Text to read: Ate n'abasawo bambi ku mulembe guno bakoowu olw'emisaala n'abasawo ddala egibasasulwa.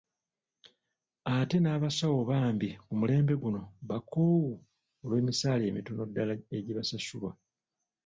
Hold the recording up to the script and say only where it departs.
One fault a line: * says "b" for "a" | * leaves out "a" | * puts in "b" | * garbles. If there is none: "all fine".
* says "emitono" for "n'abasawo"